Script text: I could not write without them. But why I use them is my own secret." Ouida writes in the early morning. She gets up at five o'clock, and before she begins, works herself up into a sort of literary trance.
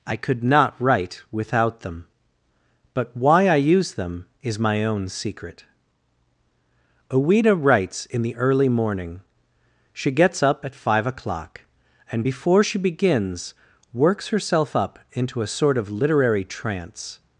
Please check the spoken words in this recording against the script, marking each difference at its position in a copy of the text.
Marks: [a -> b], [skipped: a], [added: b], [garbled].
I could not write without them. But why I use them is my own secret." Ouida writes in the early morning. She gets up at five o'clock, and before she begins, works herself up into a sort of literary trance.